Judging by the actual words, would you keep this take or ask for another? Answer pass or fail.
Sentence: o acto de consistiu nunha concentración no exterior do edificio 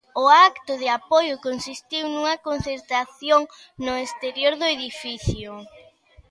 fail